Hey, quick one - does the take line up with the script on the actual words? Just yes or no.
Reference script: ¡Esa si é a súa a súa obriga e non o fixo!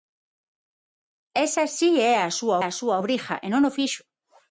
yes